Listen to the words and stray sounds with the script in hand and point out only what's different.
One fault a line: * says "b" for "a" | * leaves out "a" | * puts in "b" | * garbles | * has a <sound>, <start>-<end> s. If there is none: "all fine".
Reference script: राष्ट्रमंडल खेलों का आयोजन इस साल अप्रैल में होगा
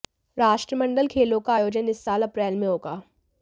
all fine